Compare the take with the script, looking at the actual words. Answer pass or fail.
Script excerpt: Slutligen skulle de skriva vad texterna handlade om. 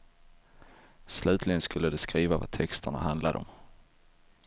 pass